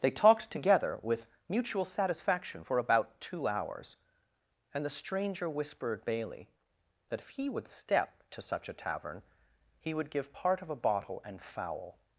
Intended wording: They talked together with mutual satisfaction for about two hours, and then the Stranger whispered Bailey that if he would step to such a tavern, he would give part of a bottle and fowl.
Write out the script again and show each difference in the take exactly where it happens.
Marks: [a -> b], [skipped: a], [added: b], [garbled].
They talked together with mutual satisfaction for about two hours, and [skipped: then] the Stranger whispered Bailey that if he would step to such a tavern, he would give part of a bottle and fowl.